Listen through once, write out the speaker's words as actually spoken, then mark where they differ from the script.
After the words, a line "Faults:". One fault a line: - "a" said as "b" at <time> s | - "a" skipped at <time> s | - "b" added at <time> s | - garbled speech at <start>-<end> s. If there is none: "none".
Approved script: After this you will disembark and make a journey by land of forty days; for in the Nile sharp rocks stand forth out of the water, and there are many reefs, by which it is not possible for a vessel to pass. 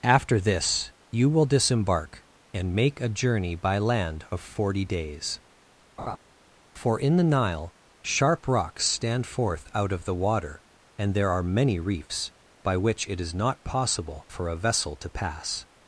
After this you will disembark and make a journey by land of forty days; for in the Nile sharp rocks stand forth out of the water, and there are many reefs, by which it is not possible for a vessel to pass.
Faults:
none